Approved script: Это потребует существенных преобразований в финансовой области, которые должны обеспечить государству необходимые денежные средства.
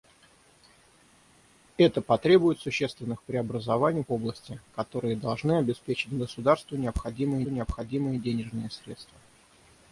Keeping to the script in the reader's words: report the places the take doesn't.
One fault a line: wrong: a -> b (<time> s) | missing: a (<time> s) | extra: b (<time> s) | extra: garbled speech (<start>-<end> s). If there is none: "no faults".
missing: в финансовой (4.0 s)
extra: необходимые (7.5 s)